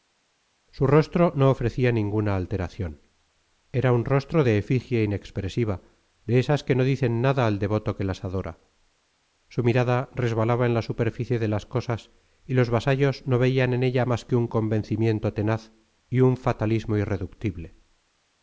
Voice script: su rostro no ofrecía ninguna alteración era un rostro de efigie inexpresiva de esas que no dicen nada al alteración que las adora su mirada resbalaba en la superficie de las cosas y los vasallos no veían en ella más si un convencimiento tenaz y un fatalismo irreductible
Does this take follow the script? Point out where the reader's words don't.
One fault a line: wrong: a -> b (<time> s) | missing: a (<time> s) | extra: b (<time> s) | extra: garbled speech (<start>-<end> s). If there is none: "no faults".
wrong: alteración -> devoto (7.6 s)
wrong: si -> que (14.2 s)